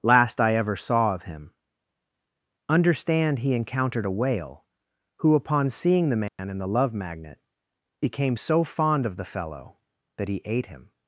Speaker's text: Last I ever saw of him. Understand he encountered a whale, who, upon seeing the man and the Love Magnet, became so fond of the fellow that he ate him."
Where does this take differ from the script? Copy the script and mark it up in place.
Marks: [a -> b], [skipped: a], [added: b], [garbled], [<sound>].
Last I ever saw of him. Understand he encountered a whale, who, upon seeing the man [dropout] and the Love Magnet, became so fond of the fellow that he ate him."